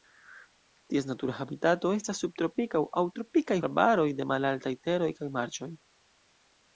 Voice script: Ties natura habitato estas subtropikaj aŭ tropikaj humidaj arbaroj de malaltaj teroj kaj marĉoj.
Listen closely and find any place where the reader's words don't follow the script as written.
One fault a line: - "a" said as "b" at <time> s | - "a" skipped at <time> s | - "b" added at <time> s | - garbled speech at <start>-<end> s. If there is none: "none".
- "humidaj" skipped at 3.6 s